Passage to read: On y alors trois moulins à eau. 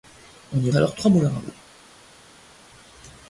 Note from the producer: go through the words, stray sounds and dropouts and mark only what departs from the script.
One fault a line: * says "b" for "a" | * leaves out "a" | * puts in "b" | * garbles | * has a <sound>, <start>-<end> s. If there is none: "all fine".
all fine